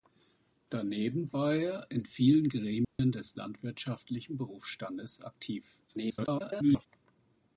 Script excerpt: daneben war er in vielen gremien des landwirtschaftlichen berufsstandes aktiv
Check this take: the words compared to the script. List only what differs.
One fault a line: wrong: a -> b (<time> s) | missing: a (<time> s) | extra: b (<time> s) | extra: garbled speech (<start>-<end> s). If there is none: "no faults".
extra: garbled speech (5.9-6.9 s)